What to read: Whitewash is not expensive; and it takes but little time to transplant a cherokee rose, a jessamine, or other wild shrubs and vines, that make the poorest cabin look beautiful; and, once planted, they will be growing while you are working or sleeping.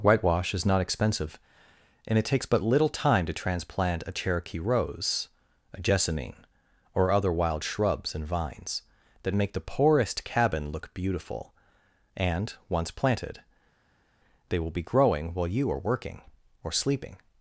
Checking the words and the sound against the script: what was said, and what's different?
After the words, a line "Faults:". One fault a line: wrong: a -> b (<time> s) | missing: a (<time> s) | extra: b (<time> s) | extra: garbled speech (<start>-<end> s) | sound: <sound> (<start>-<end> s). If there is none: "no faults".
Whitewash is not expensive; and it takes but little time to transplant a cherokee rose, a jessamine, or other wild shrubs and vines, that make the poorest cabin look beautiful; and, once planted, they will be growing while you are working or sleeping.
Faults:
no faults